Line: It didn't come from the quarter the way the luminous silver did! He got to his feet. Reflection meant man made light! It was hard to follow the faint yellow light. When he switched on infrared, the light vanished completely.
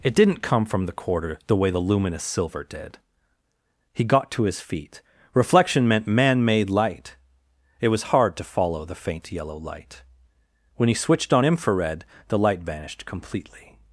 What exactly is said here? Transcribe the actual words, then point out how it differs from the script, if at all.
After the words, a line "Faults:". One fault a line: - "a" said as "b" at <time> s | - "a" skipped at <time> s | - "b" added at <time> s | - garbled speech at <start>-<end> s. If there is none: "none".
It didn't come from the quarter the way the luminous silver did! He got to his feet. Reflection meant man made light! It was hard to follow the faint yellow light. When he switched on infrared, the light vanished completely.
Faults:
none